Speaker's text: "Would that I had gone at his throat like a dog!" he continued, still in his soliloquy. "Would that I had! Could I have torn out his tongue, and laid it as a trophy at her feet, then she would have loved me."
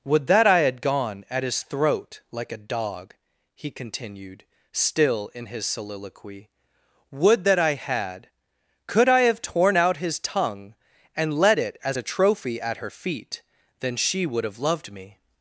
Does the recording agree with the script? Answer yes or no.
no